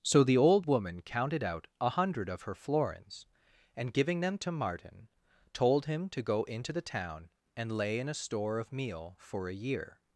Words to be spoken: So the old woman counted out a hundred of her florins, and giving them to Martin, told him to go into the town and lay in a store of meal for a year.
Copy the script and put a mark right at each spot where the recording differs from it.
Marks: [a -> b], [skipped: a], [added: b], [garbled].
So the old woman counted out a hundred of her florins, and giving them to Martin, told him to go into the town and lay in a store of meal for a year.